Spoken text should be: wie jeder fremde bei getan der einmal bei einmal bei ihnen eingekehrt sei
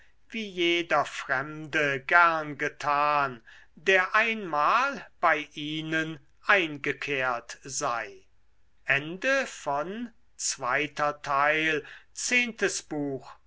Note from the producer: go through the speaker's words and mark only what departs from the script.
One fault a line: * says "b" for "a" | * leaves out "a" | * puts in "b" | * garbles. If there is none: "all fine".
* says "gern" for "bei"
* leaves out "einmal bei"